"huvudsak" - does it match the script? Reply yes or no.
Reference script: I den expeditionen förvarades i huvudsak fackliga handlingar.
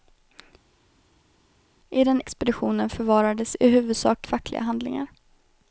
yes